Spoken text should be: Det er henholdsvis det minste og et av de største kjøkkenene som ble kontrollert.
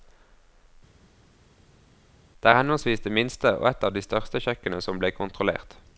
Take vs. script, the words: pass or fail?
pass